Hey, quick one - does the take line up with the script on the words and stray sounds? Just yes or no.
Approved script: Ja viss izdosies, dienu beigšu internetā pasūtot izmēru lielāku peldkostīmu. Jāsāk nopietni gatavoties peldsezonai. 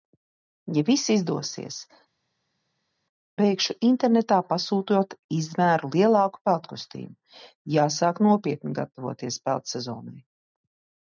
no